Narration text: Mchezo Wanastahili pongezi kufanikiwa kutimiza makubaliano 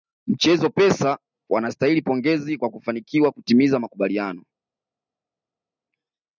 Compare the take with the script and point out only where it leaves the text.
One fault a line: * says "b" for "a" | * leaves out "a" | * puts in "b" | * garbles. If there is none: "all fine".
* puts in "Pesa"
* puts in "kwa"